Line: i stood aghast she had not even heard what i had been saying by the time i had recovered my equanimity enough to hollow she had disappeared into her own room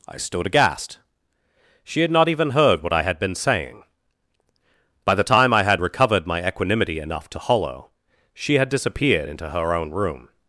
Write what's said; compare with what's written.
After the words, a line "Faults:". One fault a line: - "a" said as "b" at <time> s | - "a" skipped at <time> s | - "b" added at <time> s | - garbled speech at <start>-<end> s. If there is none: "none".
i stood aghast she had not even heard what i had been saying by the time i had recovered my equanimity enough to hollow she had disappeared into her own room
Faults:
none